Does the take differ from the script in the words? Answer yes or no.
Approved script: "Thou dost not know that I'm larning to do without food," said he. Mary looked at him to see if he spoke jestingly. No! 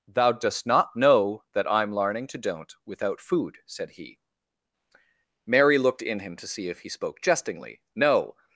yes